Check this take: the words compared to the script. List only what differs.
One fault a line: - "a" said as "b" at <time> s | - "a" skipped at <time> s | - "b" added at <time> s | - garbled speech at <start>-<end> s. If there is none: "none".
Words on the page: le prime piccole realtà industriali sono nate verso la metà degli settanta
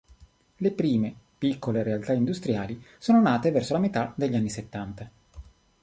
- "anni" added at 4.4 s